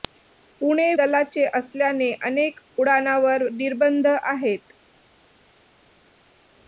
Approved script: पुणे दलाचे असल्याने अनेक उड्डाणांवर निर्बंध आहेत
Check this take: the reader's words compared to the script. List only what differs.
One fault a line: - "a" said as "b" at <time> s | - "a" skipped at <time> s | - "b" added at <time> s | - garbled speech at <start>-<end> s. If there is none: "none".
none